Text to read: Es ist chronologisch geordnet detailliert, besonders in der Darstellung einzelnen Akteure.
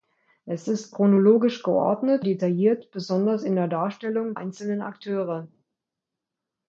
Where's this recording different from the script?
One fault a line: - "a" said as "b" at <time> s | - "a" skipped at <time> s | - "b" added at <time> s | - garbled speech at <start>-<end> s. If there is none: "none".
none